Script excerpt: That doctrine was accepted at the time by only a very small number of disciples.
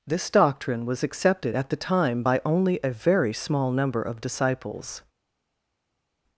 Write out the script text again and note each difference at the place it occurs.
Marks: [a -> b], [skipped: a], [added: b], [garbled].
[That -> This] doctrine was accepted at the time by only a very small number of disciples.